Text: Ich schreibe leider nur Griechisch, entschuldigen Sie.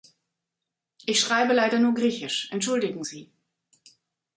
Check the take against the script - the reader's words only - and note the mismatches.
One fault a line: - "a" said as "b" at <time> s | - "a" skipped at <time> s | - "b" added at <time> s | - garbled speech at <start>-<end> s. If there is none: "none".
none